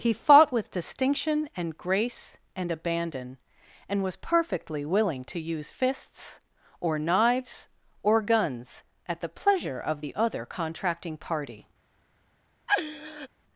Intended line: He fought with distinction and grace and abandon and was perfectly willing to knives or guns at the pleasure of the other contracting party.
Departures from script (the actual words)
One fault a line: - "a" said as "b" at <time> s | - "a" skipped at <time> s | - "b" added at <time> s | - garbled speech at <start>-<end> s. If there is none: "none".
- "use fists or" added at 5.4 s